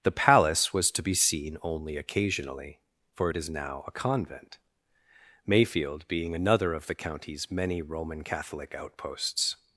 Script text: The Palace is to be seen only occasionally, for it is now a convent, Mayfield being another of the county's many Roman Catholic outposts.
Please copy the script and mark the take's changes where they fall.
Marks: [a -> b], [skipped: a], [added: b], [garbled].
The Palace [is -> was] to be seen only occasionally, for it is now a convent, Mayfield being another of the county's many Roman Catholic outposts.